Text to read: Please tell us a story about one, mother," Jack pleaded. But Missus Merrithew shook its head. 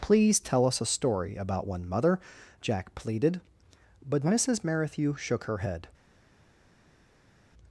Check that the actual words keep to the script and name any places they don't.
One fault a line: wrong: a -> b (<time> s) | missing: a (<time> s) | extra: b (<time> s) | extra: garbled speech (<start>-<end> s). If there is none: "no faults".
wrong: its -> her (5.5 s)